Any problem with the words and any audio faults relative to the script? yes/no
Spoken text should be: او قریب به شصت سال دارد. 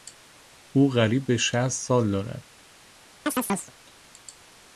yes